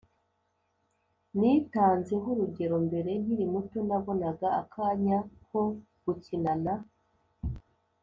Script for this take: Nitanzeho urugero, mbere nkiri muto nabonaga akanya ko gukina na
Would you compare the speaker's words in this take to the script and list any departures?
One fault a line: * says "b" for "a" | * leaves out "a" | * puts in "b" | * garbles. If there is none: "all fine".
all fine